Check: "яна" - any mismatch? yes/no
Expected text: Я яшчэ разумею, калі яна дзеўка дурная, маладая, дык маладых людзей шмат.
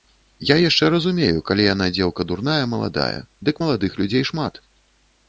no